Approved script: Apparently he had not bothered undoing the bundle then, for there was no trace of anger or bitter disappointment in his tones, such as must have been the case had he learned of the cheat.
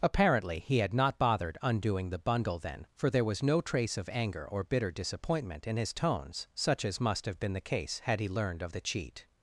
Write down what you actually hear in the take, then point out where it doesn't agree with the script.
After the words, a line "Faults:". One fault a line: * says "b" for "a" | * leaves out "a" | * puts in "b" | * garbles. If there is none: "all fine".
Apparently he had not bothered undoing the bundle then, for there was no trace of anger or bitter disappointment in his tones, such as must have been the case had he learned of the cheat.
Faults:
all fine